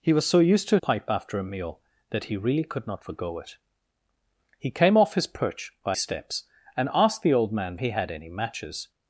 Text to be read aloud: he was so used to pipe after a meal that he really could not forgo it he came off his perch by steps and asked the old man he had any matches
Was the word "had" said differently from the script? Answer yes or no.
no